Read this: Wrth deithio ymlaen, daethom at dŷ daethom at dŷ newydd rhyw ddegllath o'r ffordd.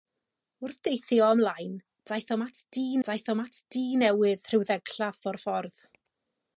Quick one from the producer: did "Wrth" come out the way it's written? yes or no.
yes